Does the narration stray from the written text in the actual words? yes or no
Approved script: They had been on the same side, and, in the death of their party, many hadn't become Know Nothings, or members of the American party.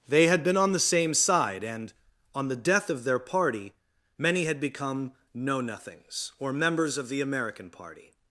yes